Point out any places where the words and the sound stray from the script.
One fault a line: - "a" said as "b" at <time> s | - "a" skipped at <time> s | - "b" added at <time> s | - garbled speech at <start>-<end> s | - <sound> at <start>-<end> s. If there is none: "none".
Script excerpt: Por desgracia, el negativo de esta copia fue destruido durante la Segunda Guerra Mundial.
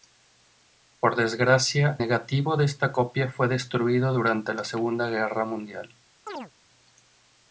- "el" skipped at 2.0 s
- chirp at 6.3-6.5 s